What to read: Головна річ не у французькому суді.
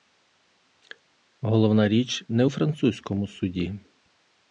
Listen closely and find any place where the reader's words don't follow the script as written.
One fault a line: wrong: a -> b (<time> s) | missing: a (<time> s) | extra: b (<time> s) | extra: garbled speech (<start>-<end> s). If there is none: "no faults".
no faults